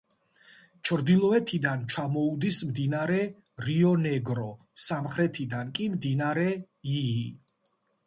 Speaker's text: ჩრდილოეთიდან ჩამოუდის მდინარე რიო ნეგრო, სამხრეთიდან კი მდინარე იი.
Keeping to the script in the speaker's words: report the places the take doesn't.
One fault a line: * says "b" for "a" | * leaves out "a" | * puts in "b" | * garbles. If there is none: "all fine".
all fine